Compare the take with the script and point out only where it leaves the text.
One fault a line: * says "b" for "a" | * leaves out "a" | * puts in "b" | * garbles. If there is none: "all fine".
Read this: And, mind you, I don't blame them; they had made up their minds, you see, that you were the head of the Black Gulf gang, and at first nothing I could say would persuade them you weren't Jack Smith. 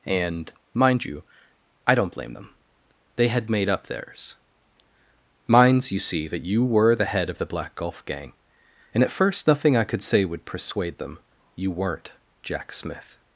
* says "theirs" for "their"